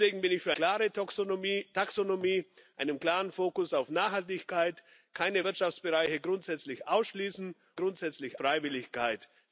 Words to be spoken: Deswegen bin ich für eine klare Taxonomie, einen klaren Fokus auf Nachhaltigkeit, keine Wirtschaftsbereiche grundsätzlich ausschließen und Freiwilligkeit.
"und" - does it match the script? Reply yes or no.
no